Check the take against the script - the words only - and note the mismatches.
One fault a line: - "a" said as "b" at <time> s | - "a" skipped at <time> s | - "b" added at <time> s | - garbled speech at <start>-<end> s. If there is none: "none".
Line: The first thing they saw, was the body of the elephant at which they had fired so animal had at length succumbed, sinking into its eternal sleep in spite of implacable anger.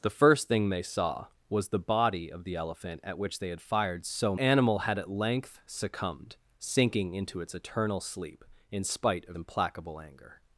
none